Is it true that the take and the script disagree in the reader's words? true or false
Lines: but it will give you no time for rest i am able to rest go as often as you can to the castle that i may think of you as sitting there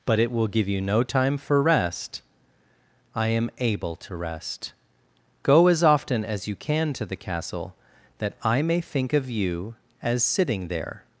false